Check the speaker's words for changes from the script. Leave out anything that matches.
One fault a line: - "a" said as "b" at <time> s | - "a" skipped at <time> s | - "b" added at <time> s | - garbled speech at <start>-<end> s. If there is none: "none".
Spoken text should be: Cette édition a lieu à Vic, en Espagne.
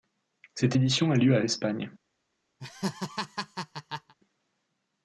- "Vic en" skipped at 1.4 s